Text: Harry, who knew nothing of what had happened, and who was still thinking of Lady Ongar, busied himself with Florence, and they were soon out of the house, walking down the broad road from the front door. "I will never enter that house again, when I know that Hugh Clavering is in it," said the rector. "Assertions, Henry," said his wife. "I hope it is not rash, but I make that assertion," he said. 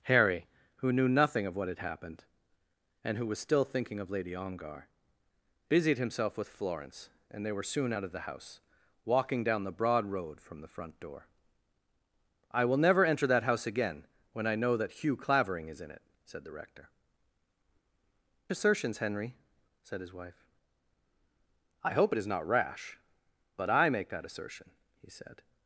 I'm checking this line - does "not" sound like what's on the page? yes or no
yes